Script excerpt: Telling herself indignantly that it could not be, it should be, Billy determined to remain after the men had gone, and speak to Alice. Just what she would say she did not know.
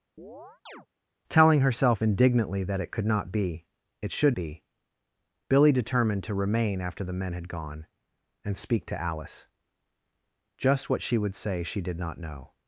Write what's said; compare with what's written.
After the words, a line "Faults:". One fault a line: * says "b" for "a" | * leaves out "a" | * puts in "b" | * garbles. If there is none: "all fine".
Telling herself indignantly that it could not be, it should be, Billy determined to remain after the men had gone, and speak to Alice. Just what she would say she did not know.
Faults:
all fine